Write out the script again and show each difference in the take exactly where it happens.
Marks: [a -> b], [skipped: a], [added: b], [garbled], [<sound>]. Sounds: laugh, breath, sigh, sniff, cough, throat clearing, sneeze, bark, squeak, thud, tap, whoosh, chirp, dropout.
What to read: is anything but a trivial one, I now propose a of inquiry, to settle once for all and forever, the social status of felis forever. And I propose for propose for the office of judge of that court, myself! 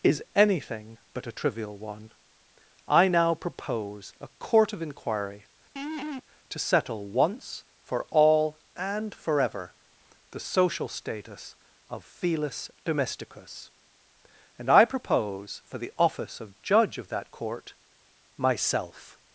is anything but a trivial one, I now propose a [added: court] of inquiry, [laugh] to settle once for all and forever, the social status of felis [forever. -> domesticus] And I propose for [skipped: propose for] the office of judge of that court, myself!